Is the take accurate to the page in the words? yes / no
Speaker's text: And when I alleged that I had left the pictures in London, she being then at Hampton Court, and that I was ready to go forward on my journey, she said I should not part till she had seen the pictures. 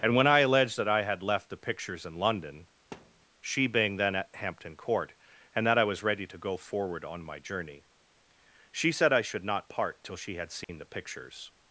yes